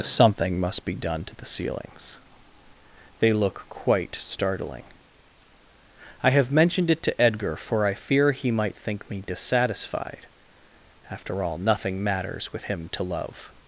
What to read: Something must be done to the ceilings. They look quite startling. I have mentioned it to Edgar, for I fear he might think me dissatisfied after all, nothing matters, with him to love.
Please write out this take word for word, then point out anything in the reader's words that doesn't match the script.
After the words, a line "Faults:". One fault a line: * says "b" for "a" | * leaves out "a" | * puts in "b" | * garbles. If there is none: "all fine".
Something must be done to the ceilings. They look quite startling. I have mentioned it to Edgar, for I fear he might think me dissatisfied after all, nothing matters, with him to love.
Faults:
all fine